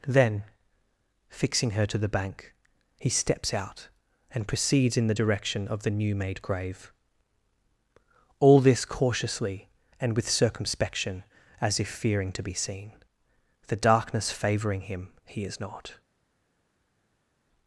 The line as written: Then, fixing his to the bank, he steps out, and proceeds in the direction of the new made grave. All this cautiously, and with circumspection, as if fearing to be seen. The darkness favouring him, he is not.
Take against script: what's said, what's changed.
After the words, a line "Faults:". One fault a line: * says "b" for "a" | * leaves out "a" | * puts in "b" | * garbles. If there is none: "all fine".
Then, fixing her to the bank, he steps out, and proceeds in the direction of the new made grave. All this cautiously, and with circumspection, as if fearing to be seen. The darkness favouring him, he is not.
Faults:
* says "her" for "his"